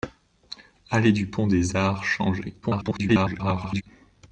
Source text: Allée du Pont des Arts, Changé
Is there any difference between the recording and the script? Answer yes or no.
yes